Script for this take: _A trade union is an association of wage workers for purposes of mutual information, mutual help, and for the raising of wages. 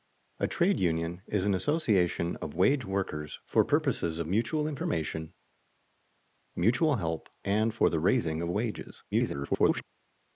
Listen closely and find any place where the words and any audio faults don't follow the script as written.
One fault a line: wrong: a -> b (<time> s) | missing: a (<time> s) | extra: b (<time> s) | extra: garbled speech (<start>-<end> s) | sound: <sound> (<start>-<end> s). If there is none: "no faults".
extra: garbled speech (9.1-9.8 s)